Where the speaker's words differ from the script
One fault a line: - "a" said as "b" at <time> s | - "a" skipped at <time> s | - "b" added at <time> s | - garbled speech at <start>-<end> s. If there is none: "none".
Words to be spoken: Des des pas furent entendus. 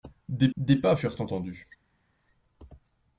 none